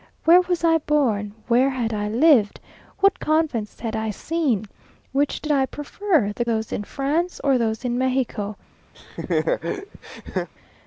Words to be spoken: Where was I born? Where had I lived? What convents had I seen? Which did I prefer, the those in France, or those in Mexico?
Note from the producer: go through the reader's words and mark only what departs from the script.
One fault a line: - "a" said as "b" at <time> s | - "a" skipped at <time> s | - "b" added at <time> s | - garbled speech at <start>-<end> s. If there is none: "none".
none